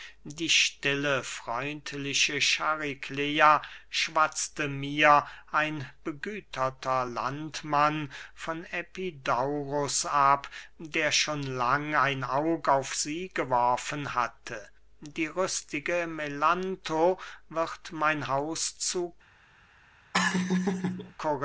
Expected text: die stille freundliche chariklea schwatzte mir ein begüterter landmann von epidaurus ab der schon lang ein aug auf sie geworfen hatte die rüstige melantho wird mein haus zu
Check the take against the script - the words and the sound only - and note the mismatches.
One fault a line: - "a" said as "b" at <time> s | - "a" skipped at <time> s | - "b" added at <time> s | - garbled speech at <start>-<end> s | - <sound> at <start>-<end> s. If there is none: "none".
- laugh at 20.1-21.1 s